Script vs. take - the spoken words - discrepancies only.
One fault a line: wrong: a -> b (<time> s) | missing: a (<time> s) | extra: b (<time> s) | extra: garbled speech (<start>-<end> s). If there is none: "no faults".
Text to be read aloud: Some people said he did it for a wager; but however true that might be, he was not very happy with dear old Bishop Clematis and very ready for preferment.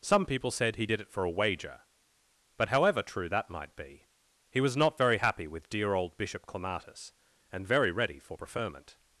no faults